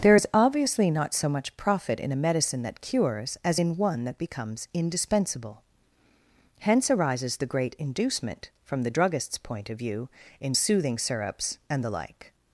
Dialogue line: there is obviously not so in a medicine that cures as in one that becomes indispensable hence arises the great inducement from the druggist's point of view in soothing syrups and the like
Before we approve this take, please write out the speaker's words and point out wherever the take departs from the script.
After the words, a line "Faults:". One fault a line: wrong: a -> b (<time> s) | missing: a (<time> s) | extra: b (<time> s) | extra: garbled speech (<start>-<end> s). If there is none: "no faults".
there is obviously not so much profit in a medicine that cures as in one that becomes indispensable hence arises the great inducement from the druggist's point of view in soothing syrups and the like
Faults:
extra: much profit (1.3 s)